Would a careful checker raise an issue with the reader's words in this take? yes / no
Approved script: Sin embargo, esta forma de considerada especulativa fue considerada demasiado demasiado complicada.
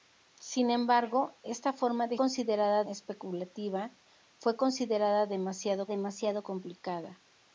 no